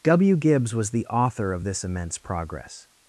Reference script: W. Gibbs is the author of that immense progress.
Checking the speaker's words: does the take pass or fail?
fail